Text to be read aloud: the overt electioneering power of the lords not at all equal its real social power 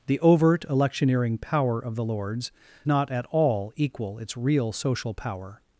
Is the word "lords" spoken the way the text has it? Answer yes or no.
yes